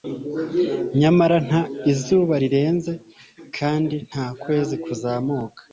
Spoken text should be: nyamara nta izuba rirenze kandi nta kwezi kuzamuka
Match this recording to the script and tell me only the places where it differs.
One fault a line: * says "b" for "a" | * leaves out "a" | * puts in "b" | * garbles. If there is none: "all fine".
all fine